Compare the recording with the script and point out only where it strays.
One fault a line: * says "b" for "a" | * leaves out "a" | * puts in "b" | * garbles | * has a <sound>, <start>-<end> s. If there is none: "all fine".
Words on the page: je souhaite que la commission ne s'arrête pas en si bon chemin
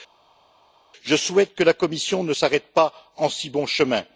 all fine